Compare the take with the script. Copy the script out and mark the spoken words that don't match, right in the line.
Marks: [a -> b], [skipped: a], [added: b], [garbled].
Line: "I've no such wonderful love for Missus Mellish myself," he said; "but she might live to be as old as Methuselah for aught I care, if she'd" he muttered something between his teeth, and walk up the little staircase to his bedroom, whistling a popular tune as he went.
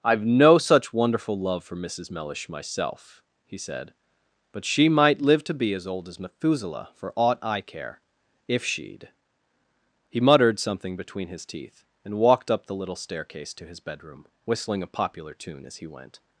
"I've no such wonderful love for Missus Mellish myself," he said; "but she might live to be as old as Methuselah for aught I care, if she'd" he muttered something between his teeth, and [walk -> walked] up the little staircase to his bedroom, whistling a popular tune as he went.